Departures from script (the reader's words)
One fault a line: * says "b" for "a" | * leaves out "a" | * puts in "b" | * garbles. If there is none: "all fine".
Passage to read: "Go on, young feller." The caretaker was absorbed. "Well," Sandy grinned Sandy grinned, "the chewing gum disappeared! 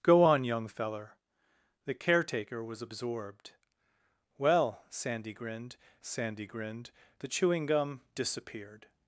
all fine